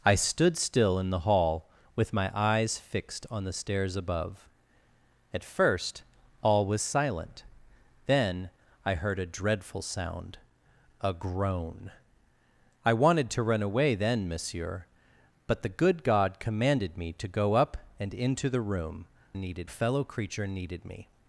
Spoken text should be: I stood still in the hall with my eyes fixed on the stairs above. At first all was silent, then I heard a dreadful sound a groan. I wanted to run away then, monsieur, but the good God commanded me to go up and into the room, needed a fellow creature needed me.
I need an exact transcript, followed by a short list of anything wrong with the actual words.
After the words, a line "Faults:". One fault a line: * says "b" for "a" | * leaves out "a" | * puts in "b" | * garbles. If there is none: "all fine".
I stood still in the hall with my eyes fixed on the stairs above. At first all was silent, then I heard a dreadful sound a groan. I wanted to run away then, monsieur, but the good God commanded me to go up and into the room, needed a fellow creature needed me.
Faults:
all fine